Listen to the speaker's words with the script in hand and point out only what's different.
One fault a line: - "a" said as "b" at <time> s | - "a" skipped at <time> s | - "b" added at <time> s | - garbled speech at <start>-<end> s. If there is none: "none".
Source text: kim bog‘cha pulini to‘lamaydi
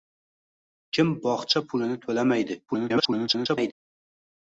- garbled speech at 2.7-3.7 s